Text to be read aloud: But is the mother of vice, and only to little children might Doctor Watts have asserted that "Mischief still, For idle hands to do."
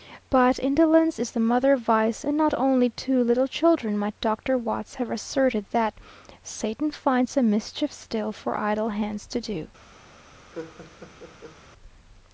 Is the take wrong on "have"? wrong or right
right